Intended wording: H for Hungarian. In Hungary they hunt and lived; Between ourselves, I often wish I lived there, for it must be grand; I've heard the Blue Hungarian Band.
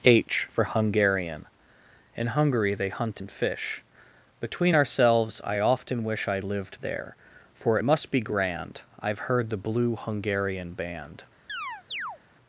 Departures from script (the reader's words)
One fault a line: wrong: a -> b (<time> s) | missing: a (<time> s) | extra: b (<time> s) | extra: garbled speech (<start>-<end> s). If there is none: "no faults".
wrong: lived -> fish (3.3 s)